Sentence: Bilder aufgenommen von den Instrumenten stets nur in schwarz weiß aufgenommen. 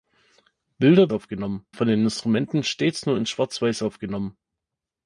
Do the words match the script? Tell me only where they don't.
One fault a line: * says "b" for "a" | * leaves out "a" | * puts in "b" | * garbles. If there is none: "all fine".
all fine